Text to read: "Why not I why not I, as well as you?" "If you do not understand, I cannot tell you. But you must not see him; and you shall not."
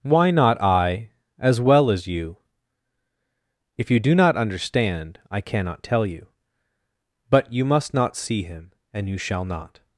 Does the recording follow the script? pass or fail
fail